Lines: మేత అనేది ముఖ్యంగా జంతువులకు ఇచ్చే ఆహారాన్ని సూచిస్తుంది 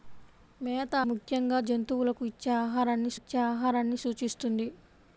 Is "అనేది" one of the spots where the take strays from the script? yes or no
yes